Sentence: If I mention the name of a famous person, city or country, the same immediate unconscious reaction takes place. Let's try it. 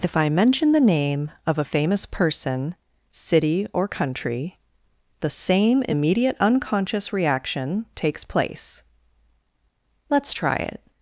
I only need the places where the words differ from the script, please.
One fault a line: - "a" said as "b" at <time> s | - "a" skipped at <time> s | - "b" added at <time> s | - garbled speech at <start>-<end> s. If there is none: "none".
none